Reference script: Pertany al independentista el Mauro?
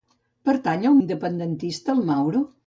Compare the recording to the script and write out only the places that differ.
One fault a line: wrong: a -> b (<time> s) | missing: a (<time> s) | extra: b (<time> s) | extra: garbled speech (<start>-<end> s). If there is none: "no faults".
no faults